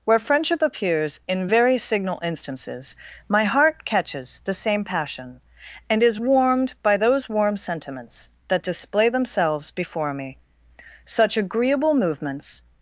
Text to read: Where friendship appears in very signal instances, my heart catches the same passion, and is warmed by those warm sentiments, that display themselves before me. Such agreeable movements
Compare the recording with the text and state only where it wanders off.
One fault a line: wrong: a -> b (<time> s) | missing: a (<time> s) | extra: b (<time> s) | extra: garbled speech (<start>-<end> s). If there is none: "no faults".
no faults